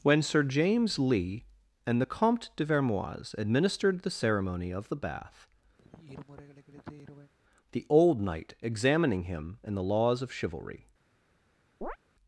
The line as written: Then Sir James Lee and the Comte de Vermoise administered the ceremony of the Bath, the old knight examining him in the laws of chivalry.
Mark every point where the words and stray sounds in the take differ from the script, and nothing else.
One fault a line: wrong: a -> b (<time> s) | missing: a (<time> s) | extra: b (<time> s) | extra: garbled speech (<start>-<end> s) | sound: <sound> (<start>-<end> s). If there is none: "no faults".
wrong: Then -> When (0.0 s)
sound: sigh (5.8-7.3 s)
sound: chirp (11.8-12.0 s)